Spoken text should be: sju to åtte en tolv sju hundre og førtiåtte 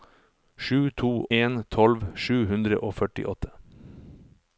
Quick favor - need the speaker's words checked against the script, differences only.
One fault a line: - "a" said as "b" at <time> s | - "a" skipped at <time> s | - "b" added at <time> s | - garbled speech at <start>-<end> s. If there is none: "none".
- "åtte" skipped at 1.2 s